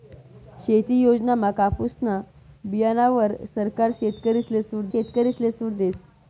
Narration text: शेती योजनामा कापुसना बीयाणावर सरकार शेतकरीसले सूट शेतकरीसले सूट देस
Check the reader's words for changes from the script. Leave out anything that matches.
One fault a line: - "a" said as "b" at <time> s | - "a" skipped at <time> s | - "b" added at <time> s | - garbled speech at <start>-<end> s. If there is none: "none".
none